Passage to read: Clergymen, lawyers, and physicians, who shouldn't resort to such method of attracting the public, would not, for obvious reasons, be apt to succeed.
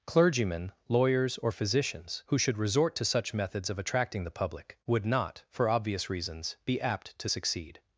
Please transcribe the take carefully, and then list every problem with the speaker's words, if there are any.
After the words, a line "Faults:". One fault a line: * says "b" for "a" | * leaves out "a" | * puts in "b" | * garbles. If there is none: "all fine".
Clergymen, lawyers, or physicians, who should resort to such methods of attracting the public, would not, for obvious reasons, be apt to succeed.
Faults:
* says "or" for "and"
* says "should" for "shouldn't"
* says "methods" for "method"